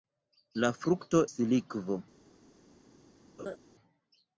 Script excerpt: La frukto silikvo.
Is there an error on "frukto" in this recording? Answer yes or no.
no